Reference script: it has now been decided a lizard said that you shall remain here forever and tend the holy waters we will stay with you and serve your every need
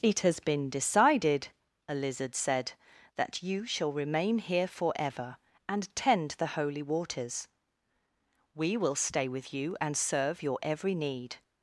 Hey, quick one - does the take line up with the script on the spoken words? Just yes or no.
no